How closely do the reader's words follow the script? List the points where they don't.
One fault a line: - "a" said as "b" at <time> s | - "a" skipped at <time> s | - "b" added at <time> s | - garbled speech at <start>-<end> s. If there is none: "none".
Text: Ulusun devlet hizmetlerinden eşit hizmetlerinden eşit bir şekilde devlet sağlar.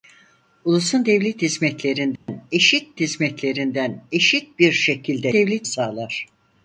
none